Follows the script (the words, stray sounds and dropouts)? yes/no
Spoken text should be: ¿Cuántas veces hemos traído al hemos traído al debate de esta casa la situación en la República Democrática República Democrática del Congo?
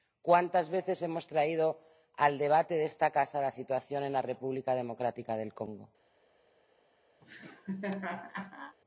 no